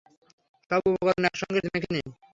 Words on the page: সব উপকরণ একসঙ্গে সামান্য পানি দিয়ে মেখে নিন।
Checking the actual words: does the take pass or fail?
fail